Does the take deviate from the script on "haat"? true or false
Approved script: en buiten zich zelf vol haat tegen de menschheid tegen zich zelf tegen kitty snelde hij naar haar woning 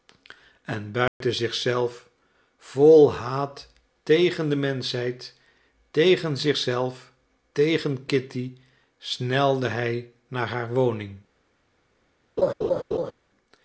false